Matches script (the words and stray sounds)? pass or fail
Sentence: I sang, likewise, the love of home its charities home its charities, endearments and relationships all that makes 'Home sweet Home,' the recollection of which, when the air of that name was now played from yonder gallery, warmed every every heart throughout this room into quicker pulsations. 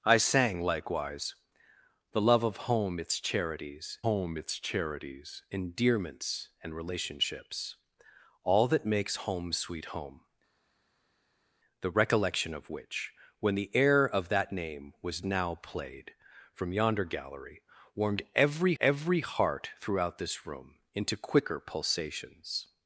pass